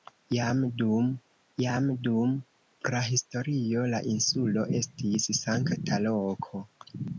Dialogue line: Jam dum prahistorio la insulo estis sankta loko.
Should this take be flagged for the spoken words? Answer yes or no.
yes